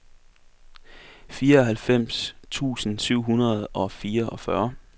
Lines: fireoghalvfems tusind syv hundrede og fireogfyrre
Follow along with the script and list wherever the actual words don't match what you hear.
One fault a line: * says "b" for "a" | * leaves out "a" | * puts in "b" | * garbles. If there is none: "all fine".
all fine